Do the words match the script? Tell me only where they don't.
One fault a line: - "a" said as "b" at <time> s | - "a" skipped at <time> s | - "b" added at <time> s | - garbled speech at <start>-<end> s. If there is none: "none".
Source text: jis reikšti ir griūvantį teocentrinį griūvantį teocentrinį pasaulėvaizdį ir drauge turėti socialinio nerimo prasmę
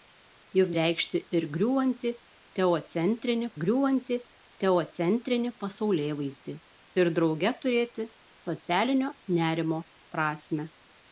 none